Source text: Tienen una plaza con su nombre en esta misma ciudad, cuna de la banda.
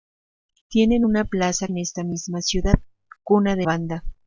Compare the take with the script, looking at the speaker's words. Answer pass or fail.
fail